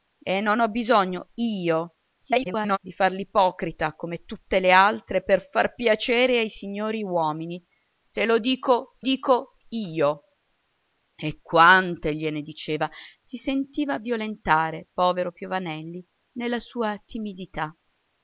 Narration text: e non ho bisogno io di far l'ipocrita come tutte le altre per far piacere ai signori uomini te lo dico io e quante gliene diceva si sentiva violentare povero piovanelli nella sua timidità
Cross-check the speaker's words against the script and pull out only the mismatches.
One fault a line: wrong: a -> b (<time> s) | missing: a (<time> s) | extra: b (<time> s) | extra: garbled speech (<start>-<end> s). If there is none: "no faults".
extra: garbled speech (2.2-2.8 s)
extra: dico (9.0 s)